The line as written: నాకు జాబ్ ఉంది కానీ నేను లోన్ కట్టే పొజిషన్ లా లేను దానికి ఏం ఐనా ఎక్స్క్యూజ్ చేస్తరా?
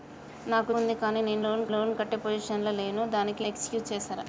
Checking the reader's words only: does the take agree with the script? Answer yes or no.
no